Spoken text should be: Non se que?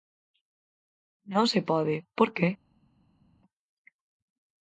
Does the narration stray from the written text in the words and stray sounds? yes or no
yes